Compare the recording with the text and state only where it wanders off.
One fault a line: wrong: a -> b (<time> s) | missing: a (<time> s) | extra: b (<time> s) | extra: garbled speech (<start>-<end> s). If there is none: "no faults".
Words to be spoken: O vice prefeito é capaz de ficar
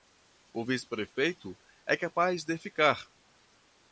no faults